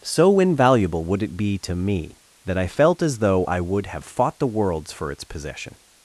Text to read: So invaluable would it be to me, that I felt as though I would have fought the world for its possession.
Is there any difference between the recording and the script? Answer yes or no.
yes